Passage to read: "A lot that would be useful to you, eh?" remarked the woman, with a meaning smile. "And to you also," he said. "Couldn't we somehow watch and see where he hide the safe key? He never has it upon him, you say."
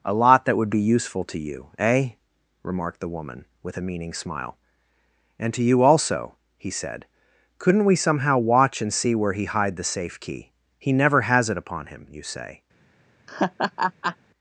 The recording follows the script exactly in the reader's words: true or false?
true